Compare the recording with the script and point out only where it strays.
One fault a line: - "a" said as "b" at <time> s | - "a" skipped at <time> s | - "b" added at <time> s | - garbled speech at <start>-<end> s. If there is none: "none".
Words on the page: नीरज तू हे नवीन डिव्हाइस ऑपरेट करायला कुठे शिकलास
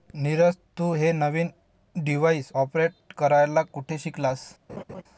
none